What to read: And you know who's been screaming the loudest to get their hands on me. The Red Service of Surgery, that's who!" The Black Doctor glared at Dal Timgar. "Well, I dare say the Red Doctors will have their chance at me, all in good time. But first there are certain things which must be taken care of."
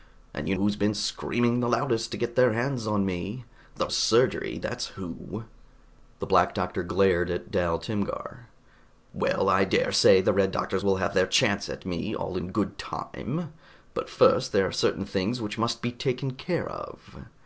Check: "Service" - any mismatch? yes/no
yes